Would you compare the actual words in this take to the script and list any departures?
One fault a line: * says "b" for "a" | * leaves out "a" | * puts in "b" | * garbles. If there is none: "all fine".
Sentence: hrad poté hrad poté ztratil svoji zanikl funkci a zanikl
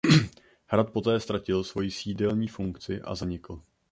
* leaves out "hrad poté"
* says "sídelní" for "zanikl"